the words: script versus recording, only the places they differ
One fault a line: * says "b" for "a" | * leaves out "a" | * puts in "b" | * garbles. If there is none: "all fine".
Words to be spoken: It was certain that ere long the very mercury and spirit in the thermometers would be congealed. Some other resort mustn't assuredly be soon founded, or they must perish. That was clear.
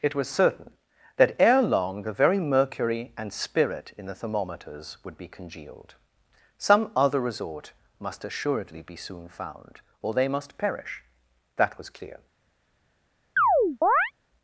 * says "must" for "mustn't"
* says "found" for "founded"